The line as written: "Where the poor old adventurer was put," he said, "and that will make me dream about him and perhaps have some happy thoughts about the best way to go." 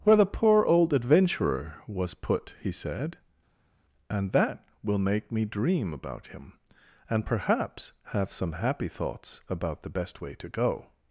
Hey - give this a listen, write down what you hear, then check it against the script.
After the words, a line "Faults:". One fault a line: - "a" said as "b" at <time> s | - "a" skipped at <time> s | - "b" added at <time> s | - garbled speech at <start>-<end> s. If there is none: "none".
"Where the poor old adventurer was put," he said, "and that will make me dream about him and perhaps have some happy thoughts about the best way to go."
Faults:
none